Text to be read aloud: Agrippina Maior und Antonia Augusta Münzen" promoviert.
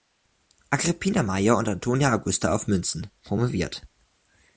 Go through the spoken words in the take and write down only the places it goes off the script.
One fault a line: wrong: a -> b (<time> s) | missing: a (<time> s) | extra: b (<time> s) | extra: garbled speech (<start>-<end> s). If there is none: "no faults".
extra: auf (2.5 s)